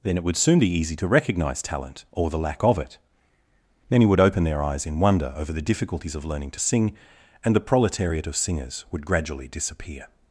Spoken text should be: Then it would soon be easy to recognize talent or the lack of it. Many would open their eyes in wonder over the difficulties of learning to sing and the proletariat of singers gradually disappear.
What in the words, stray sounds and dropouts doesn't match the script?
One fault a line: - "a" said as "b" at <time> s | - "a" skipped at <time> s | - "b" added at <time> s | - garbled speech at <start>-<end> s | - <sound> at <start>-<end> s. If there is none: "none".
- "would" added at 8.9 s